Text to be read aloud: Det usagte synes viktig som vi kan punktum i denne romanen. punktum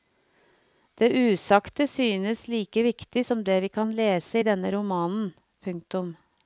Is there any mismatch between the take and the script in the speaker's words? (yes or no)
yes